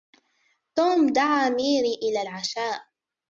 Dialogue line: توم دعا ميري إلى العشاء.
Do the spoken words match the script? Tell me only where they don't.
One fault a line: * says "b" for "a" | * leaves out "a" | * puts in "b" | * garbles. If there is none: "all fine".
all fine